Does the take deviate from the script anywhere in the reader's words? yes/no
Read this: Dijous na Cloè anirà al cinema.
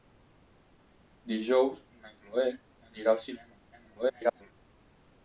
yes